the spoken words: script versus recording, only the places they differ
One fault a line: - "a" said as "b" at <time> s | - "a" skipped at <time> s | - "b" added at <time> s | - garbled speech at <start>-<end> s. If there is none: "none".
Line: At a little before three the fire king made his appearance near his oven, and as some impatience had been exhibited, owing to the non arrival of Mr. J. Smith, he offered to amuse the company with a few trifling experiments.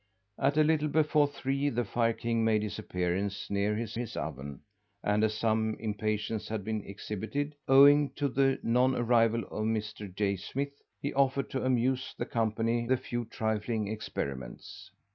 - "his" added at 3.9 s
- "with" skipped at 12.9 s